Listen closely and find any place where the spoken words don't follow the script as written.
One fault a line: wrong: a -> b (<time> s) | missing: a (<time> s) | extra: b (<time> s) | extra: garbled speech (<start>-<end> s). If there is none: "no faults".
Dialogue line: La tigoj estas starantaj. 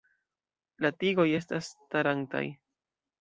no faults